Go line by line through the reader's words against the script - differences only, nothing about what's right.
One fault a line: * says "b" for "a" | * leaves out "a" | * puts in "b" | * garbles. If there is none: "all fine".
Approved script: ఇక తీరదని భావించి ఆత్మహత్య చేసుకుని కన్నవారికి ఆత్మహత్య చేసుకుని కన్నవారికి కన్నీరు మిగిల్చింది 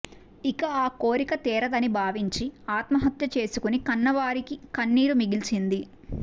* puts in "ఆ కోరిక"
* leaves out "ఆత్మహత్య చేసుకుని కన్నవారికి"